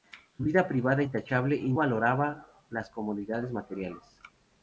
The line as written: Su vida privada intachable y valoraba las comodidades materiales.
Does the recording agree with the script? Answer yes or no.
yes